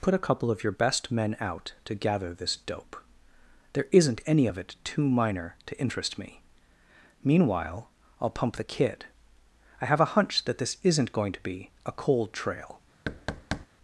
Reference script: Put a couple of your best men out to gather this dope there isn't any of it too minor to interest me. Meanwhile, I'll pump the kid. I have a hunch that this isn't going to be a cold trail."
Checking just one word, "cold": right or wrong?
right